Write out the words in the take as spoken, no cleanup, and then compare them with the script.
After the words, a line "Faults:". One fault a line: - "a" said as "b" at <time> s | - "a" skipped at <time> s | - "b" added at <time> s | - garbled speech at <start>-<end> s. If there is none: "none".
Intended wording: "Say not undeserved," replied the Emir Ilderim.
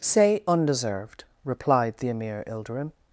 "Say undeserved," replied the Emir Ilderim.
Faults:
- "not" skipped at 0.4 s